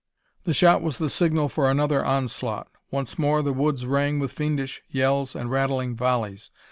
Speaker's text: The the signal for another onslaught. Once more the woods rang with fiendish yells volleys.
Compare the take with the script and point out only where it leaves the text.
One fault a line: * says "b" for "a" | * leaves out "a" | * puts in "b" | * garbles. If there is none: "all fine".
* puts in "shot was"
* puts in "and rattling"